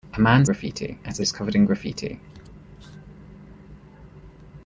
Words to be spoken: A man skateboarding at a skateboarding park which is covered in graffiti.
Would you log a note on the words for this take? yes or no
yes